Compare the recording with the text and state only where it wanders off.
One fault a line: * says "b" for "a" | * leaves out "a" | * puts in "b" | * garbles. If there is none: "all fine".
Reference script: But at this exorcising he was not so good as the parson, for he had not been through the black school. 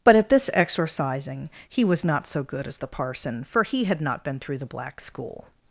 all fine